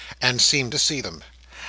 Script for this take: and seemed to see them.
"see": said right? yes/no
yes